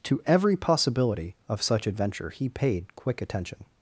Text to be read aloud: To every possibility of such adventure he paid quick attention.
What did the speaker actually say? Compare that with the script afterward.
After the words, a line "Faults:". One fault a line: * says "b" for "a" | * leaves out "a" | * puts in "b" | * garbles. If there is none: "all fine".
To every possibility of such adventure he paid quick attention.
Faults:
all fine